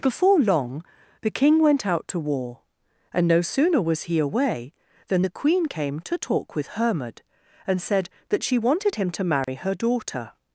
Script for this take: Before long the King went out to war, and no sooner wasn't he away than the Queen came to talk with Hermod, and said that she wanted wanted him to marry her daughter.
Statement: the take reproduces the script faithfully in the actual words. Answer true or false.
false